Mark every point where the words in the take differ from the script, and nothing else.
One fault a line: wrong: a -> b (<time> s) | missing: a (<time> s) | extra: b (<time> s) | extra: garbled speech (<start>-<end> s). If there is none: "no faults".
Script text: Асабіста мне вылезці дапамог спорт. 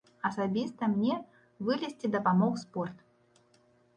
no faults